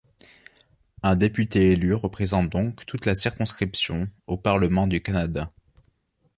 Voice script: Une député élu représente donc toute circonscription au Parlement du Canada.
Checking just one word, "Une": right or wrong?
wrong